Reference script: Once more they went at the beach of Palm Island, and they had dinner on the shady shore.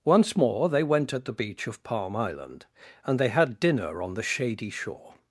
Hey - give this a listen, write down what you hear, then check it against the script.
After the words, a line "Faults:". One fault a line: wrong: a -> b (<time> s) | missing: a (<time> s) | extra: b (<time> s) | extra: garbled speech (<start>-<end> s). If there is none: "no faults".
Once more they went at the beach of Palm Island, and they had dinner on the shady shore.
Faults:
no faults